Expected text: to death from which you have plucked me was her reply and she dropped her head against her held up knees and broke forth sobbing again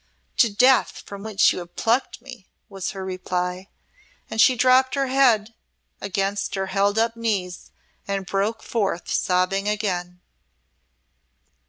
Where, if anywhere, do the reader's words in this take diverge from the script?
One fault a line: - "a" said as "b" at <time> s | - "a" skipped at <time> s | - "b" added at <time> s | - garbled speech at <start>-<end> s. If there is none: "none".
none